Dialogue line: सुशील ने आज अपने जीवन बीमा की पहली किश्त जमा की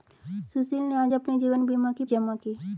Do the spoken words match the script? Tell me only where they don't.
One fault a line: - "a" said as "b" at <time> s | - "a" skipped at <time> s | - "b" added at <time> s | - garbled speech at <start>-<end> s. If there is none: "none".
- "पहली किश्त" skipped at 2.0 s